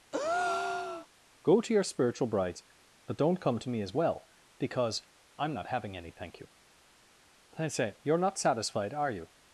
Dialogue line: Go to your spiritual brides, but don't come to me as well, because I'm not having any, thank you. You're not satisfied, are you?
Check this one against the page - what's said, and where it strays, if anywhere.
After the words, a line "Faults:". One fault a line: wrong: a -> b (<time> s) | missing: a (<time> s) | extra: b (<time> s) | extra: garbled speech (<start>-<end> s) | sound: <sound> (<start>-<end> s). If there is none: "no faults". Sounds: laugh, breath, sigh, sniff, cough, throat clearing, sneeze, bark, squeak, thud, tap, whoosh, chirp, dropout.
Go to your spiritual brides, but don't come to me as well, because I'm not having any, thank you. I say You're not satisfied, are you?
Faults:
sound: breath (0.1-1.1 s)
extra: I say (7.6 s)